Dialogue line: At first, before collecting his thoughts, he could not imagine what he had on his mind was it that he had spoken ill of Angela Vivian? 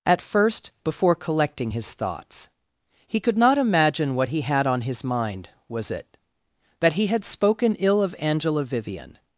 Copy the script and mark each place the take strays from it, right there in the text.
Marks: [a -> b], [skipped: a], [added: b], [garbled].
At first, before collecting his thoughts, he could not imagine what he had on his mind was it that he had spoken ill of Angela Vivian?